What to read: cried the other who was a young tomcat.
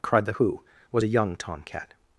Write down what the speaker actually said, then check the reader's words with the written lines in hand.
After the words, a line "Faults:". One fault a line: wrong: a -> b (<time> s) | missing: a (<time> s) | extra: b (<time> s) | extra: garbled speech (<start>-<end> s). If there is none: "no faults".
cried the who was a young tomcat.
Faults:
missing: other (0.3 s)